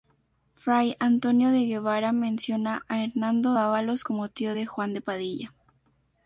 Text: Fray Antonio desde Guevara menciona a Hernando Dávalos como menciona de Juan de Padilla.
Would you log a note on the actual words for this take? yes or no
yes